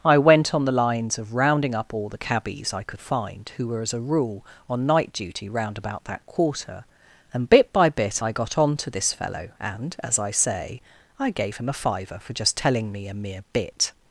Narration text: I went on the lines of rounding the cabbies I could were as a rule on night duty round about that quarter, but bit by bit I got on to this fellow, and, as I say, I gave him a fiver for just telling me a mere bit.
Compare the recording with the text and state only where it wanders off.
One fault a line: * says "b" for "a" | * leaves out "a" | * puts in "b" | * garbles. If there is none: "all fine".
* puts in "up all"
* puts in "find who"
* says "and" for "but"